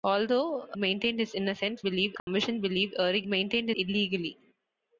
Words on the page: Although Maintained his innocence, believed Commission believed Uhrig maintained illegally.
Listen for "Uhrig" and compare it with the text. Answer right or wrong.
right